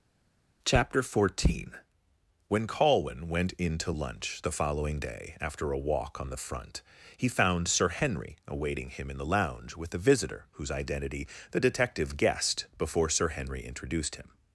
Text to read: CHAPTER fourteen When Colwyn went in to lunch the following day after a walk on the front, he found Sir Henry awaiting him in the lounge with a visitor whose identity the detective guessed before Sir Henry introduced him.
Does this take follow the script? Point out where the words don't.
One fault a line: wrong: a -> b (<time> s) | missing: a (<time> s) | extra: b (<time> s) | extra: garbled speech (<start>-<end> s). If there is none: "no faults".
no faults